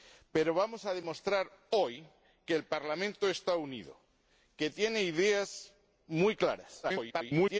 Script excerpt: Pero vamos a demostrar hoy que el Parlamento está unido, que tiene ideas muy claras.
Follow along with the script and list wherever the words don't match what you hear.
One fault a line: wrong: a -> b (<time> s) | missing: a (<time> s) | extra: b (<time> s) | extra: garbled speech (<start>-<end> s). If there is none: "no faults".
extra: garbled speech (6.8-7.6 s)